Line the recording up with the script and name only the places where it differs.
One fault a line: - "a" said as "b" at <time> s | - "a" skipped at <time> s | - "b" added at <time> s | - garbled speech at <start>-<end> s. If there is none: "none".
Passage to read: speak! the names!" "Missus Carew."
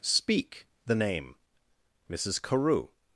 - "names" said as "name" at 0.9 s